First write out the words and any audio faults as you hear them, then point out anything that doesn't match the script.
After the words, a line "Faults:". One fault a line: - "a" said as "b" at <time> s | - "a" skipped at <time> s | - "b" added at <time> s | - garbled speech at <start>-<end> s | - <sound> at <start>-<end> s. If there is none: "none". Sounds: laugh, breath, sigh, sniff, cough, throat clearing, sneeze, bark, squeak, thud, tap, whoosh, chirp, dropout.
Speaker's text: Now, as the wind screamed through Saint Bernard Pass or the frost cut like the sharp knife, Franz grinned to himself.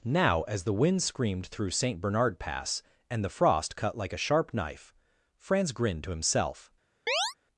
Now, as the wind screamed through Saint Bernard Pass and the frost cut like a sharp knife, Franz grinned to himself.
Faults:
- "or" said as "and" at 3.1 s
- "the" said as "a" at 4.1 s
- chirp at 7.1-7.3 s